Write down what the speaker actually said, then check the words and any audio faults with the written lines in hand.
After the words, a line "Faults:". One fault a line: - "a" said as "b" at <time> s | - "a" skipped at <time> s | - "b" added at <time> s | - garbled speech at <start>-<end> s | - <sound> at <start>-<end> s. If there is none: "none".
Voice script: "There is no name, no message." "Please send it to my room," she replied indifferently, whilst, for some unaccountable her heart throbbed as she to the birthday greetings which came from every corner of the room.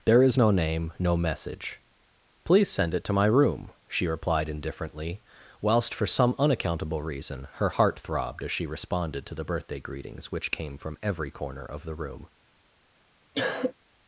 "There is no name, no message." "Please send it to my room," she replied indifferently, whilst, for some unaccountable reason, her heart throbbed as she responded to the birthday greetings which came from every corner of the room.
Faults:
- "reason" added at 7.0 s
- "responded" added at 8.7 s
- cough at 13.3-13.7 s